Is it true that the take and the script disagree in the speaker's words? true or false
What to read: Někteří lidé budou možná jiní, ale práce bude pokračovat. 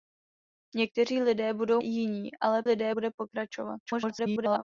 true